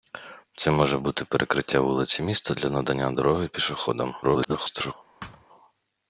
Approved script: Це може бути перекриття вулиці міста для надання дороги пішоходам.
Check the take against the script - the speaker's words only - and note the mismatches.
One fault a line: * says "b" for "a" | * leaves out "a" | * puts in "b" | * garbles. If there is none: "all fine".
* garbles